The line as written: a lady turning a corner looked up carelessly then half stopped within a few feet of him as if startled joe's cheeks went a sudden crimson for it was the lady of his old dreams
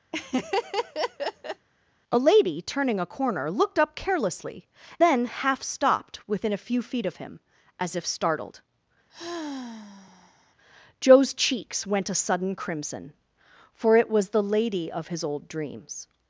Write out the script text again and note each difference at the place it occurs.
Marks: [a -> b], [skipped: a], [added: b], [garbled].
a lady turning a corner looked up carelessly then half stopped within a few feet of him as if startled joe's cheeks went a sudden crimson for it was the lady of his old dreams